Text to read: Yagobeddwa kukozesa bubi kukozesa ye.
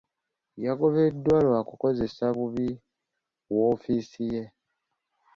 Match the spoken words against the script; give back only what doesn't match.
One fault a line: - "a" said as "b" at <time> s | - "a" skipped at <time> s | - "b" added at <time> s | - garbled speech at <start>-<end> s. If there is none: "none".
- "lwa" added at 1.4 s
- "kukozesa" said as "woofiisi" at 3.5 s